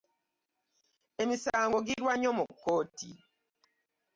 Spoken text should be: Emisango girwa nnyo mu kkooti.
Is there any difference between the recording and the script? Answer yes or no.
no